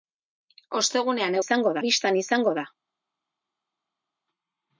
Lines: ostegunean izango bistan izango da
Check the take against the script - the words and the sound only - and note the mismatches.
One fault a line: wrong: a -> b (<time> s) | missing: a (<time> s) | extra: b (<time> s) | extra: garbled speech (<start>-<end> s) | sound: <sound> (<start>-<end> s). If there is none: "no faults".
no faults